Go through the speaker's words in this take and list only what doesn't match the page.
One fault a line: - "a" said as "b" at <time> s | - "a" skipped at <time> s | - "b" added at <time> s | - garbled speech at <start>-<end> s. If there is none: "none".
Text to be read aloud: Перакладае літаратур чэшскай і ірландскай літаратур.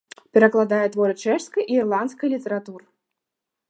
- "літаратур" said as "творы" at 0.9 s